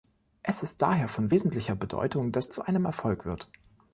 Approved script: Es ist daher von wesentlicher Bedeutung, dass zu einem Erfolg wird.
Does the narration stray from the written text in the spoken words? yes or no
no